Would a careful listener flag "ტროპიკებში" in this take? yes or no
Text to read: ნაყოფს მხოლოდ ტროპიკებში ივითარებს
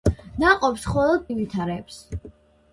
yes